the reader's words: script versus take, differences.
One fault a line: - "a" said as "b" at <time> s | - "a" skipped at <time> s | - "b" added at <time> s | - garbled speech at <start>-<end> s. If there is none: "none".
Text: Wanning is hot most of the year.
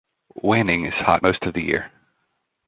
none